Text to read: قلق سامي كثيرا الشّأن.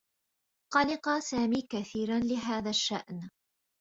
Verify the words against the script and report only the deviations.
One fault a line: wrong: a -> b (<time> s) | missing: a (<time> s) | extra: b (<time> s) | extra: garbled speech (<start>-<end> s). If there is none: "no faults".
extra: لهذا (2.2 s)